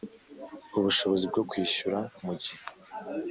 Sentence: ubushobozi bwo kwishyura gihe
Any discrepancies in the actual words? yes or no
yes